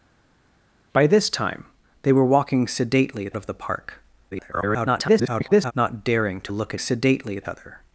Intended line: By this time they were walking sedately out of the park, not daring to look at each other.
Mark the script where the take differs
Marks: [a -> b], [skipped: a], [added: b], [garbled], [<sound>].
By this time they were walking sedately [skipped: out] of the park, [garbled] not daring to look at [each -> sedately] other.